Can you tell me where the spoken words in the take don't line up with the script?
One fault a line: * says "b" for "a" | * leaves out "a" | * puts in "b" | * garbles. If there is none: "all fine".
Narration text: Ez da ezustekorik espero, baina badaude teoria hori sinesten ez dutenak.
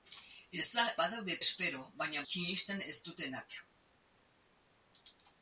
* says "badaude" for "ezustekorik"
* leaves out "badaude teoria hori"